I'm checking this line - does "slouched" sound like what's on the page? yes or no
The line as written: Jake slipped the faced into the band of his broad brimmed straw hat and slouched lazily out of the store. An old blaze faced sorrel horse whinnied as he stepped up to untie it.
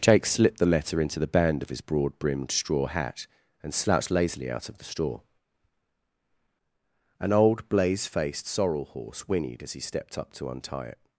yes